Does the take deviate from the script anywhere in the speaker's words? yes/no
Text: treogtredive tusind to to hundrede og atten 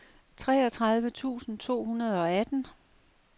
yes